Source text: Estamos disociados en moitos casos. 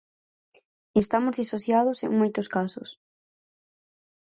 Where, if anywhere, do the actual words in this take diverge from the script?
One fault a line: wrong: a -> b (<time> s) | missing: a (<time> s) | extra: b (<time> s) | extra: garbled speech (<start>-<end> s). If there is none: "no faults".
no faults